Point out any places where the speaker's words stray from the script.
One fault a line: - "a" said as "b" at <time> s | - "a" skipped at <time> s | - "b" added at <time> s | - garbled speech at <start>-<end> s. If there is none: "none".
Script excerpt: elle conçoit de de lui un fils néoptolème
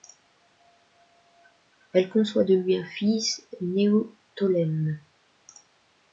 - "de" skipped at 2.5 s